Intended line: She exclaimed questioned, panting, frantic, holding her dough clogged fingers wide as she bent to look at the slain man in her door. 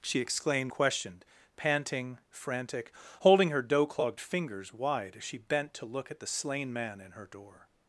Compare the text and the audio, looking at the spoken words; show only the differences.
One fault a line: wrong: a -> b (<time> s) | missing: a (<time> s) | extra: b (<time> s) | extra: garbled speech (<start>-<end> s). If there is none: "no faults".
no faults